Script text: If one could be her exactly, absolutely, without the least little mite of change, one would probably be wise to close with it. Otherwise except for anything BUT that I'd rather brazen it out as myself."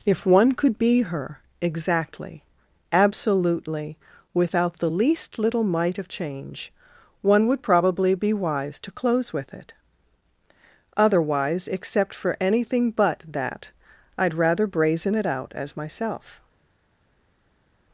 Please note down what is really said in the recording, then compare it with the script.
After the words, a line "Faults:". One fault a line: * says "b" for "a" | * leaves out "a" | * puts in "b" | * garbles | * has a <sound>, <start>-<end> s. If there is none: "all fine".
If one could be her exactly, absolutely, without the least little mite of change, one would probably be wise to close with it. Otherwise except for anything BUT that I'd rather brazen it out as myself."
Faults:
all fine